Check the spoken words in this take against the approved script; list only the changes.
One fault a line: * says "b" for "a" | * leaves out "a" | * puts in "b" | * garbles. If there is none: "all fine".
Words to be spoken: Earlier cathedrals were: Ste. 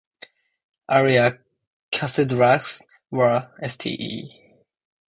all fine